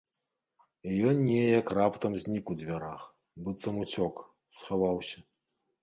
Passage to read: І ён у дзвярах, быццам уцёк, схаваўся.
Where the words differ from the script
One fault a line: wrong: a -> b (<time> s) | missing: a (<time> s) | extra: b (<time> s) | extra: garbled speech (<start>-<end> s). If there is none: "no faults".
extra: неяк раптам знік (1.3 s)